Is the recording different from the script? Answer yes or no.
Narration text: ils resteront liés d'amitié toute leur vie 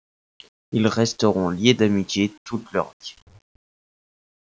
no